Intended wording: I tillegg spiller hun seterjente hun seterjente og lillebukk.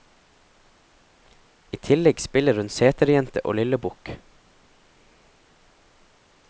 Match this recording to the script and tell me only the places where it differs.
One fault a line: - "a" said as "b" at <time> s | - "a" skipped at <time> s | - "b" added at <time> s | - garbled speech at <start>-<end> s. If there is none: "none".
- "hun seterjente" skipped at 3.4 s